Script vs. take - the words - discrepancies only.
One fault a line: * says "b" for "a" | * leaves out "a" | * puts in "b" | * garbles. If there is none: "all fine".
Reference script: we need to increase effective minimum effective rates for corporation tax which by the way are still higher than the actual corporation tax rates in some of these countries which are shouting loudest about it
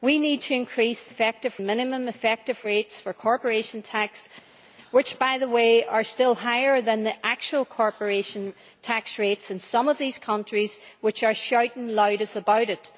all fine